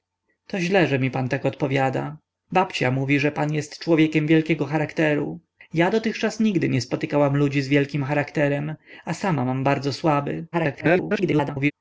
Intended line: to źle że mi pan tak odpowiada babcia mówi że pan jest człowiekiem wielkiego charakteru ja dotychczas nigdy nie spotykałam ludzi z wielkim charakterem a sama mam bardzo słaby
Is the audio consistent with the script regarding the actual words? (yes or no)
no